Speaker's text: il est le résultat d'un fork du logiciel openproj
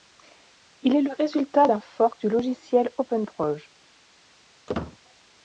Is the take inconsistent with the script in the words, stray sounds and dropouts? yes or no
yes